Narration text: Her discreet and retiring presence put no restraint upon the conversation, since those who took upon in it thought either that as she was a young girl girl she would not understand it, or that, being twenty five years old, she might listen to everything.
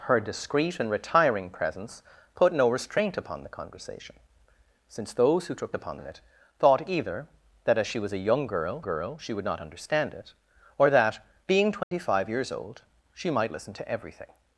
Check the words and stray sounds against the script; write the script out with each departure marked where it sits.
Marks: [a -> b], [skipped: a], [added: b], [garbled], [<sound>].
Her discreet and retiring presence put no restraint upon the conversation, since those who took upon in it thought either that as she was a young girl girl she would not understand it, or that, being twenty [dropout] five years old, she might listen to everything.